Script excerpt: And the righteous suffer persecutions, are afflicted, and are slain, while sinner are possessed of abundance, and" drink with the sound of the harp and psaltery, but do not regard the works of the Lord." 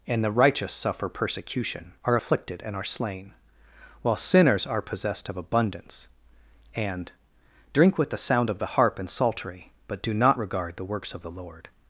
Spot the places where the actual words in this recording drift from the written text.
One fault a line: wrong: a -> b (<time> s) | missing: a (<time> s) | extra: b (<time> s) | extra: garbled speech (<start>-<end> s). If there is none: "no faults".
wrong: persecutions -> persecution (1.1 s)
wrong: sinner -> sinners (4.2 s)